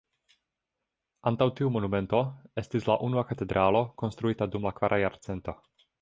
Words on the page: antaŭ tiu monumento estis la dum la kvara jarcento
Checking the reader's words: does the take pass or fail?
fail